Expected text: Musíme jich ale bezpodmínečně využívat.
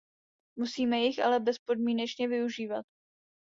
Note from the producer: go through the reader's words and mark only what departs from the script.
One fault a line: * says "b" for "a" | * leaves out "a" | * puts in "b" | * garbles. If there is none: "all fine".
all fine